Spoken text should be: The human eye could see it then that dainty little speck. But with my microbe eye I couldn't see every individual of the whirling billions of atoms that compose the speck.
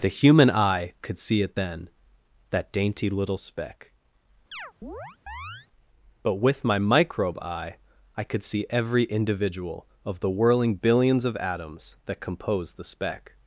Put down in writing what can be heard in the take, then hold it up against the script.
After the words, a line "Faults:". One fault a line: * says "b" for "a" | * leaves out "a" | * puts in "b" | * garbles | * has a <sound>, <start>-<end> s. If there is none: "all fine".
The human eye could see it then that dainty little speck. But with my microbe eye I could see every individual of the whirling billions of atoms that compose the speck.
Faults:
* has a chirp, 4.5-5.7 s
* says "could" for "couldn't"